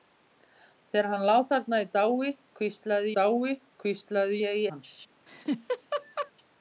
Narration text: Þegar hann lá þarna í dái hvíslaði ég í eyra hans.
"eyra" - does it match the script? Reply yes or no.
no